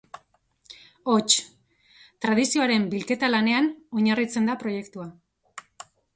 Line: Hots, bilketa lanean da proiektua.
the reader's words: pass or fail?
fail